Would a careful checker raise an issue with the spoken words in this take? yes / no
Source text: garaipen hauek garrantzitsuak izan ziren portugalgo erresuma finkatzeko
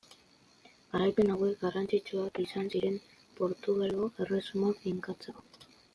no